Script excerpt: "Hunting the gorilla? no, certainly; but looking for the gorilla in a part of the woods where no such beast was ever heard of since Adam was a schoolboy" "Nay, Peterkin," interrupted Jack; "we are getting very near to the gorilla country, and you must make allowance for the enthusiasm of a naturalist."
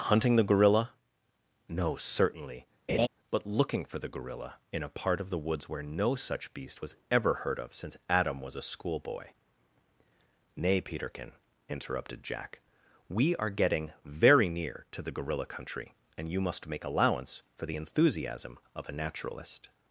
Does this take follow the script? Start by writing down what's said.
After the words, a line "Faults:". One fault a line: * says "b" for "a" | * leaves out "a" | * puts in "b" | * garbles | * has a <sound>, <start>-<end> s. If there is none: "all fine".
"Hunting the gorilla? no, certainly; but looking for the gorilla in a part of the woods where no such beast was ever heard of since Adam was a schoolboy" "Nay, Peterkin," interrupted Jack; "we are getting very near to the gorilla country, and you must make allowance for the enthusiasm of a naturalist."
Faults:
* has a laugh, 2.9-3.1 s